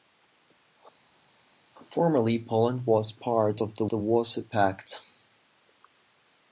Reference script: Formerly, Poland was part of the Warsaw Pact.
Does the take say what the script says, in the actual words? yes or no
no